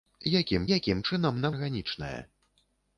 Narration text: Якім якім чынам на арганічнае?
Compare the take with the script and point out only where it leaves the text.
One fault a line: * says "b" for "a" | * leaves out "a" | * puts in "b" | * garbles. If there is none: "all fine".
all fine